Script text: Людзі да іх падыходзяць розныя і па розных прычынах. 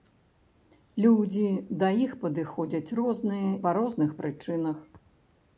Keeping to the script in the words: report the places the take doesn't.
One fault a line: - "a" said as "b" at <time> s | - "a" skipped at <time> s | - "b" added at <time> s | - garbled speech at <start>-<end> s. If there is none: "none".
- "і" skipped at 3.5 s